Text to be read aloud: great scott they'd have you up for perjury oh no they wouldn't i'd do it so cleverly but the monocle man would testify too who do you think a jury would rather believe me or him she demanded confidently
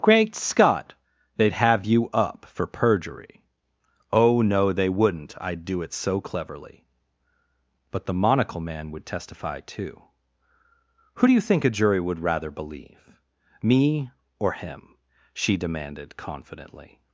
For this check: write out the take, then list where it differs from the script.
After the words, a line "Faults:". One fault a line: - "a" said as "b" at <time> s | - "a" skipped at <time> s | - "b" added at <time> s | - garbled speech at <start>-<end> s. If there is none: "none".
great scott they'd have you up for perjury oh no they wouldn't i'd do it so cleverly but the monocle man would testify too who do you think a jury would rather believe me or him she demanded confidently
Faults:
none